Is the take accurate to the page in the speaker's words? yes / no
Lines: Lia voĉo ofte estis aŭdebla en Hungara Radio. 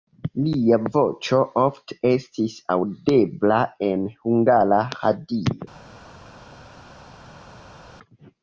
yes